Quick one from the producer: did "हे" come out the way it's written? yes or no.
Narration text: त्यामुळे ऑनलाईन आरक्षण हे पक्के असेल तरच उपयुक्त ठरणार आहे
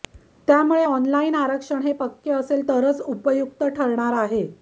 yes